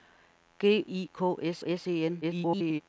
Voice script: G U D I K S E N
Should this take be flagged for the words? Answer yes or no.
yes